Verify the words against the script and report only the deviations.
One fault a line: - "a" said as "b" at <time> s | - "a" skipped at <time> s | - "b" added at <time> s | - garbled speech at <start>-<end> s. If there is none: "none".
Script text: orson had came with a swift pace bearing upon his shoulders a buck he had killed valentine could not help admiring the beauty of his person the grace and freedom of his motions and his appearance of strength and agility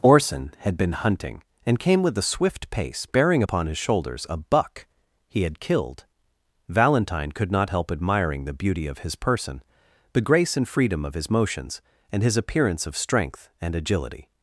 - "been hunting and" added at 0.8 s